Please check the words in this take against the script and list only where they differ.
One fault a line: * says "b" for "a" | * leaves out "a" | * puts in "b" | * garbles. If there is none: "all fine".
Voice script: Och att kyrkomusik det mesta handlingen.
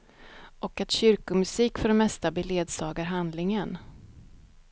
* puts in "för"
* puts in "beledsagar"